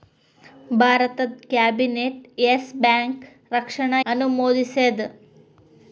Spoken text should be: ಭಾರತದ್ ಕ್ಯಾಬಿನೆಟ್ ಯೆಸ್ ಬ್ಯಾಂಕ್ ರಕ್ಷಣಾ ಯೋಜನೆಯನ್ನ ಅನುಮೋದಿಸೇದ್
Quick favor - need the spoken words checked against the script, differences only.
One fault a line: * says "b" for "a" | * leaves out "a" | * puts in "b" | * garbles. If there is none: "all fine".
* leaves out "ಯೋಜನೆಯನ್ನ"